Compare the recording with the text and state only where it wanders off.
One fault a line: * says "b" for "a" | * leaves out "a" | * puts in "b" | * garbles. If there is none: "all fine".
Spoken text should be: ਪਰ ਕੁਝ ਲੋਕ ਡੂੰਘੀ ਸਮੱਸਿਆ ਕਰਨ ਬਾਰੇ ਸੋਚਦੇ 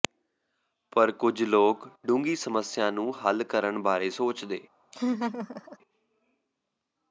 * puts in "ਨੂੰ ਹੱਲ"